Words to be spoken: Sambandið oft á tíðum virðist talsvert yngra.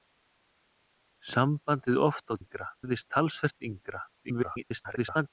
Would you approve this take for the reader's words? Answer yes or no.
no